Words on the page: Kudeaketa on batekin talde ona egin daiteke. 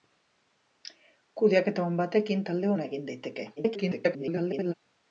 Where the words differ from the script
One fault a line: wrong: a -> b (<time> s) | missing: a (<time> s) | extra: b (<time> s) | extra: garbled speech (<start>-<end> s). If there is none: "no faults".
extra: garbled speech (3.6-4.7 s)